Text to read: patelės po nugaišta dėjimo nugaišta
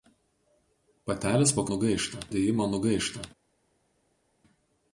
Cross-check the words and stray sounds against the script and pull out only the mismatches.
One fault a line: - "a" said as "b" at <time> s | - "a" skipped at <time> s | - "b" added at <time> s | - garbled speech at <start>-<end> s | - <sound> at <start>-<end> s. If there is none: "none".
none